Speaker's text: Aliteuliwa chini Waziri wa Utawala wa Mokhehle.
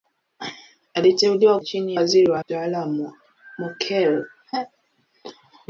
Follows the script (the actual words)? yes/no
yes